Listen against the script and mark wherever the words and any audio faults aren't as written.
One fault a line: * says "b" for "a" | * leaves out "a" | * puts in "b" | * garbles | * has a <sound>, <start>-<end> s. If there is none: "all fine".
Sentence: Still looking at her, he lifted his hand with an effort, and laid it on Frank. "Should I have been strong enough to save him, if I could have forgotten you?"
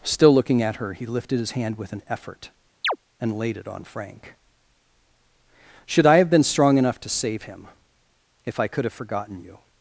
* has a chirp, 2.8-3.0 s